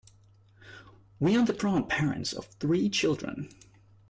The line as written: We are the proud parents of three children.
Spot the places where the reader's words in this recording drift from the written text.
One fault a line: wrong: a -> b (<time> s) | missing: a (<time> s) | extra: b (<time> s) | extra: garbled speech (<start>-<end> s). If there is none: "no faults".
no faults